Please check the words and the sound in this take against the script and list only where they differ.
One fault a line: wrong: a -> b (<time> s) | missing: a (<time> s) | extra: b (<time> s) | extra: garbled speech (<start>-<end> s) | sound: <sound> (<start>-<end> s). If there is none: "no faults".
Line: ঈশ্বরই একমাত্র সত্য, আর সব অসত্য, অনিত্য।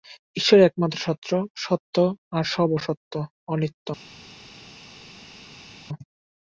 no faults